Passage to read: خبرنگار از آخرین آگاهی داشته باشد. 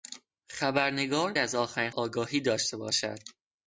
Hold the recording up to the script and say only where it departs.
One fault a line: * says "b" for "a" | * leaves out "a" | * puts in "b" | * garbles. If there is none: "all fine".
all fine